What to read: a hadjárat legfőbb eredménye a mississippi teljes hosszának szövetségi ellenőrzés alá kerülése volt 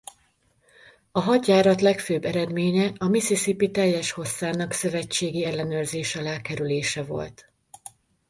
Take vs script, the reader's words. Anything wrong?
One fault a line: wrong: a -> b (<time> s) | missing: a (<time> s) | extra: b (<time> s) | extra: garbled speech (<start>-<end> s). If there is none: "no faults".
no faults